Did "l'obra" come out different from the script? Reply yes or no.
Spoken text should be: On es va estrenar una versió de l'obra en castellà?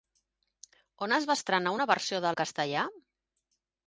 yes